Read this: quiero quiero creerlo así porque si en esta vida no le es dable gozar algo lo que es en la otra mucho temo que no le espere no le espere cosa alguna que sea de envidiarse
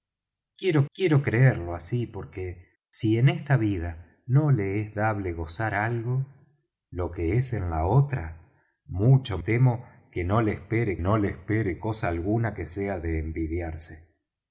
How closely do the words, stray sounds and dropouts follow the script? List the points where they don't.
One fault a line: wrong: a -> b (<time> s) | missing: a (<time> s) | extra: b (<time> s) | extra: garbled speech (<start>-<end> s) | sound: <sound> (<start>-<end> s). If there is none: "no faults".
no faults